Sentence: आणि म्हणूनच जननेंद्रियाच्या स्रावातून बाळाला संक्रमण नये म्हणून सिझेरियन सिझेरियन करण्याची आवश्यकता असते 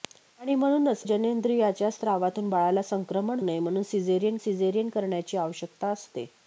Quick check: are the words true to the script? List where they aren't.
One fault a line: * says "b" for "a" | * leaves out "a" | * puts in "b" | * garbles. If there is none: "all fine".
all fine